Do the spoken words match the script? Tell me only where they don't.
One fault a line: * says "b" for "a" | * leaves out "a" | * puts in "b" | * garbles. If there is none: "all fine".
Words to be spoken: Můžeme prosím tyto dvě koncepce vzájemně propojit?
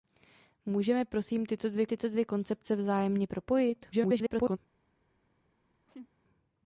* puts in "tyto dvě"
* garbles